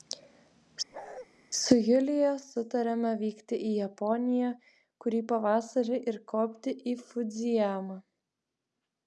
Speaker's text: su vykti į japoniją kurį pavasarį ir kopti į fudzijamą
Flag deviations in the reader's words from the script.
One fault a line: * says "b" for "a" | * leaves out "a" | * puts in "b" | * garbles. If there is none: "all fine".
* puts in "julija sutarėme"